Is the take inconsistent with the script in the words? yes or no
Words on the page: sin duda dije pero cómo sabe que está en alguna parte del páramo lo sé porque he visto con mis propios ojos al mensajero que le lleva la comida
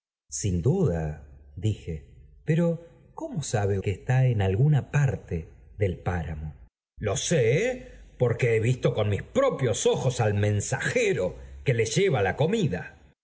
no